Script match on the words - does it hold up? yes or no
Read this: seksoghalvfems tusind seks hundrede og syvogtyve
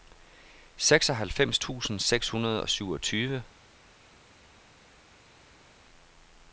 yes